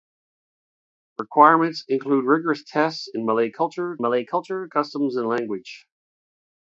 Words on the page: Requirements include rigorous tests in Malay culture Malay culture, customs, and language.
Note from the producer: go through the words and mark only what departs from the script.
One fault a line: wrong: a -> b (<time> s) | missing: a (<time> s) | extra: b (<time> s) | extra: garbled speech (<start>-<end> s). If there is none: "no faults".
no faults